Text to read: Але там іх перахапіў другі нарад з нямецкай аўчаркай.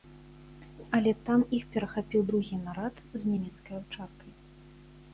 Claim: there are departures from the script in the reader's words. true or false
false